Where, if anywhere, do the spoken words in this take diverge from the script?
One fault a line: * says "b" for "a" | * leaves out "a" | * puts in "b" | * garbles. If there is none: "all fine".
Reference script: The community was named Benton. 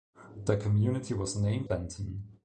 all fine